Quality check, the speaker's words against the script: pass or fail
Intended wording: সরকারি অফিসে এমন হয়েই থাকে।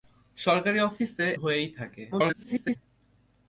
fail